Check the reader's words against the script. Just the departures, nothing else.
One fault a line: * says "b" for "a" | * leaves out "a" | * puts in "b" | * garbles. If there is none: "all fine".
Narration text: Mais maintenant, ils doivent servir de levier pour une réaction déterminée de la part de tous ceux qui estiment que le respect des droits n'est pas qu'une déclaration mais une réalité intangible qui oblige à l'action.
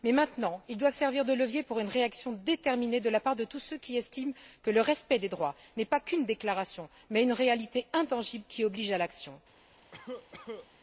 all fine